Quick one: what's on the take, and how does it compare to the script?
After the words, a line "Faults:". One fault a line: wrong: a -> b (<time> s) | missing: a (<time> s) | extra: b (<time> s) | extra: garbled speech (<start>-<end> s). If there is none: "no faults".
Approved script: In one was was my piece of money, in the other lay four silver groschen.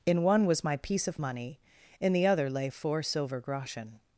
In one was my piece of money, in the other lay four silver groschen.
Faults:
missing: was (0.6 s)